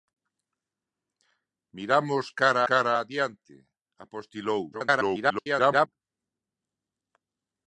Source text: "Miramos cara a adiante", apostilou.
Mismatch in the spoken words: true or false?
true